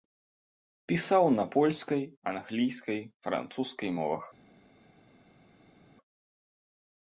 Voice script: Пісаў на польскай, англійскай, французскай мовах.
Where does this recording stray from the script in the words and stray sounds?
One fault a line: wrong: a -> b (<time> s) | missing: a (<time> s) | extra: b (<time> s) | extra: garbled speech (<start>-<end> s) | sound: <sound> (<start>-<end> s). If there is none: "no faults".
no faults